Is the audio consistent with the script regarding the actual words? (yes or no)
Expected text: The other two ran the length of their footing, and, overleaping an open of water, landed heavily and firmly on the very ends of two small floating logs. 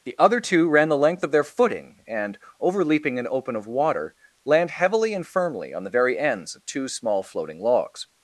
no